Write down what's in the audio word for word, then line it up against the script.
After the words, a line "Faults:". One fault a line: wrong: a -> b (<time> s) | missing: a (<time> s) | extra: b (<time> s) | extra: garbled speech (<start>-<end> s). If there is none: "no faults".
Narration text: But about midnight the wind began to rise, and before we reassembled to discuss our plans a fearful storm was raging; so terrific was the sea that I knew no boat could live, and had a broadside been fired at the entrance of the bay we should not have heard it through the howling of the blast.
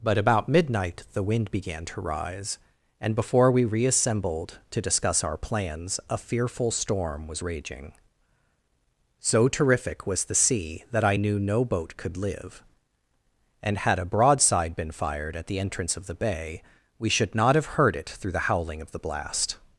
But about midnight the wind began to rise, and before we reassembled to discuss our plans a fearful storm was raging; so terrific was the sea that I knew no boat could live, and had a broadside been fired at the entrance of the bay we should not have heard it through the howling of the blast.
Faults:
no faults